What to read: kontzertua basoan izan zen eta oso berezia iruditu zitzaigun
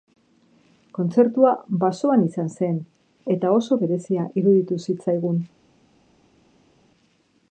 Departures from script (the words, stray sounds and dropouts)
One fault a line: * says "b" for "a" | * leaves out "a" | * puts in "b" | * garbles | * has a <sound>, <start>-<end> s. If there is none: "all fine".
all fine